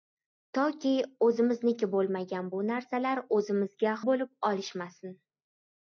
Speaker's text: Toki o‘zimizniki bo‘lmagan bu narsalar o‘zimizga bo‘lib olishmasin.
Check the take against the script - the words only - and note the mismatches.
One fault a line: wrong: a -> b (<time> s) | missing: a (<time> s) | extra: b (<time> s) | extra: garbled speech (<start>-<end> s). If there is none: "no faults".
no faults